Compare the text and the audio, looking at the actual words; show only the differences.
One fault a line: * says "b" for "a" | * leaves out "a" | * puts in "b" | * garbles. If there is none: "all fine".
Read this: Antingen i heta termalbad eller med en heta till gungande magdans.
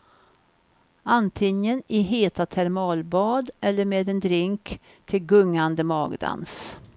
* says "drink" for "heta"